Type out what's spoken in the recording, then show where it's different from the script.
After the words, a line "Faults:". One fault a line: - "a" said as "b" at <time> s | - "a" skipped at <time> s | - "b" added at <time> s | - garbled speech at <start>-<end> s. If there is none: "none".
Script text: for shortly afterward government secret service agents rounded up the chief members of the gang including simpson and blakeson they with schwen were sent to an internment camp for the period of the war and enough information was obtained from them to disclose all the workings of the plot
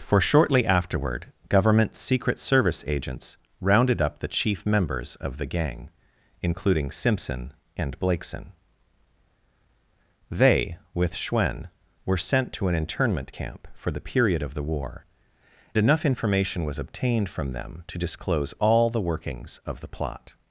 for shortly afterward government secret service agents rounded up the chief members of the gang including simpson and blakeson they with schwen were sent to an internment camp for the period of the war enough information was obtained from them to disclose all the workings of the plot
Faults:
- "and" skipped at 15.0 s